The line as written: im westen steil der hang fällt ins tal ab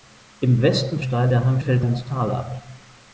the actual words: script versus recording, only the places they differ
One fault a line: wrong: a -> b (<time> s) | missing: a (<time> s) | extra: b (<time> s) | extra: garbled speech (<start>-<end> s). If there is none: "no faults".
no faults